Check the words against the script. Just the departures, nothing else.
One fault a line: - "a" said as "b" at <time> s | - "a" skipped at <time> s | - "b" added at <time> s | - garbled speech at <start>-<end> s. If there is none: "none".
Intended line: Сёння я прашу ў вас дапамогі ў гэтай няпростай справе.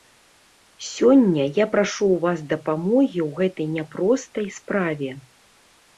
none